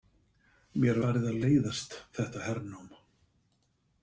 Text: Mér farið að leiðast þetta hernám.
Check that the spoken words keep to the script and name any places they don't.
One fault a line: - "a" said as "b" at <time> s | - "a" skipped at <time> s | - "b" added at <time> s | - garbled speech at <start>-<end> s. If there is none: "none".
none